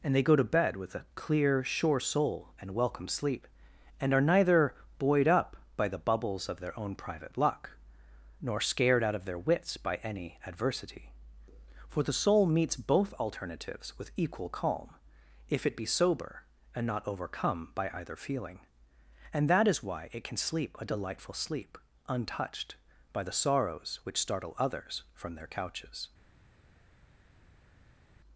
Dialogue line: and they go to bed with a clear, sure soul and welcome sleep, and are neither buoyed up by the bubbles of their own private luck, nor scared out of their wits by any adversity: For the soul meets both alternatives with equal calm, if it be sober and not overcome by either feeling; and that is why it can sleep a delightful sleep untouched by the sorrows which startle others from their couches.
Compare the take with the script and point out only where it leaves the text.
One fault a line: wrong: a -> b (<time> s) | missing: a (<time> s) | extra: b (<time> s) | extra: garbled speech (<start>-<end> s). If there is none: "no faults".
no faults